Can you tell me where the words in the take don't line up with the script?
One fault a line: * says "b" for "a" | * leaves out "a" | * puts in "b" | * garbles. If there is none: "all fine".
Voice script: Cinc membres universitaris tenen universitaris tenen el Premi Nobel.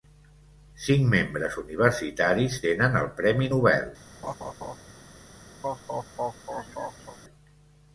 * leaves out "universitaris tenen"